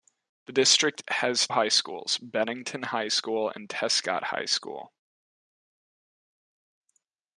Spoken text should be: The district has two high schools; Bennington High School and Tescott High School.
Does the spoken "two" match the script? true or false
false